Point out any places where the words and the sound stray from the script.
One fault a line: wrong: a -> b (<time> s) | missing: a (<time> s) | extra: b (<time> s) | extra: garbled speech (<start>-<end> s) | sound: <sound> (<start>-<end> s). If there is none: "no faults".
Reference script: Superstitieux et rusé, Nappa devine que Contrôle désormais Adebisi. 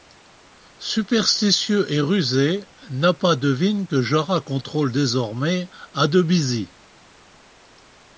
extra: Jara (4.0 s)